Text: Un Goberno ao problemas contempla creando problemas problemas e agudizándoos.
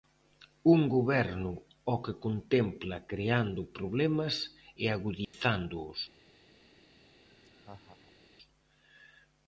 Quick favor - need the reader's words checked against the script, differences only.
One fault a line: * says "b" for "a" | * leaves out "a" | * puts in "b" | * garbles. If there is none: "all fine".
* says "que" for "problemas"
* leaves out "problemas"